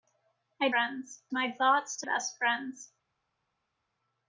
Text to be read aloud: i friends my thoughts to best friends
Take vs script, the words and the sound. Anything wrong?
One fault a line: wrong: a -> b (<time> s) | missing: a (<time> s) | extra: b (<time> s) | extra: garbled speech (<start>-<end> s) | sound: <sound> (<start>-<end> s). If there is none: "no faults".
no faults